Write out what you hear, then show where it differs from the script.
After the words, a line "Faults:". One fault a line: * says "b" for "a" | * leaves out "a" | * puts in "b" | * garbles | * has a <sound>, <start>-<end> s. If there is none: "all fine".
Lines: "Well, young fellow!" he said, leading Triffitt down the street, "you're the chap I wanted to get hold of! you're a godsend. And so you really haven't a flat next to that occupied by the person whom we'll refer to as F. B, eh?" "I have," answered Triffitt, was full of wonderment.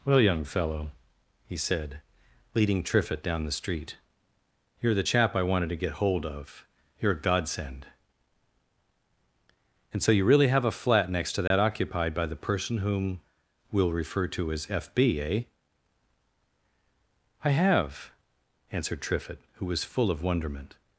"Well, young fellow!" he said, leading Triffitt down the street, "you're the chap I wanted to get hold of! you're a godsend. And so you really have a flat next to that occupied by the person whom we'll refer to as F. B, eh?" "I have," answered Triffitt, who was full of wonderment.
Faults:
* says "have" for "haven't"
* has a dropout, 11.5-11.5 s
* puts in "who"